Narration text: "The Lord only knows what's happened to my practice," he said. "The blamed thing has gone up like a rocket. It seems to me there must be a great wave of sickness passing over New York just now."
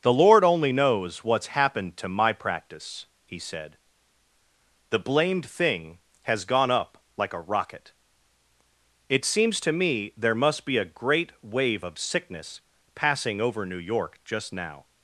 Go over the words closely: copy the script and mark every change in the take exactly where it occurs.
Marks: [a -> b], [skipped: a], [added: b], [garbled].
"The Lord only knows what's happened to my practice," he said. "The blamed thing has gone up like a rocket. It seems to me there must be a great wave of sickness passing over New York just now."